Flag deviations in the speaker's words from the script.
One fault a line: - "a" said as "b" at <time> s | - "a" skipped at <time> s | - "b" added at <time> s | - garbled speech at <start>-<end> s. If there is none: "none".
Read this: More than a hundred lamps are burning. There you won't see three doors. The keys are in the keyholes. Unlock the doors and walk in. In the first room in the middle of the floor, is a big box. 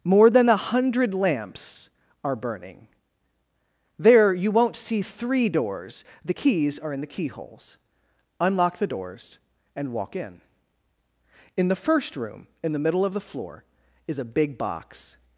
none